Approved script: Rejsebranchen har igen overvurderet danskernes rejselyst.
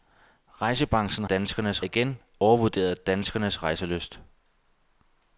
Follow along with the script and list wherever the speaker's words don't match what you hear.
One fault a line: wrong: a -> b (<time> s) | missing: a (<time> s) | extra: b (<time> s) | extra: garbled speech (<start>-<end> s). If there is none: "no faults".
wrong: har -> danskernes (1.3 s)